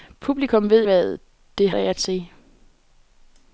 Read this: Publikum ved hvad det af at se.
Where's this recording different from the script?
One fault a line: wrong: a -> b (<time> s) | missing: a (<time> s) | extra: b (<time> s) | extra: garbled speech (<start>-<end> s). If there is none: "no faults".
no faults